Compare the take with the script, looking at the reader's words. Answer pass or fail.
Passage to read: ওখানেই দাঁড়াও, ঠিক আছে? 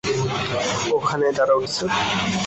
fail